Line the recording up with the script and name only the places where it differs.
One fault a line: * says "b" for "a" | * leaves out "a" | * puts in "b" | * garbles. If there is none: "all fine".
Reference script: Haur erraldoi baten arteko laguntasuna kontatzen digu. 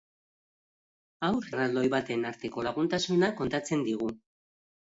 all fine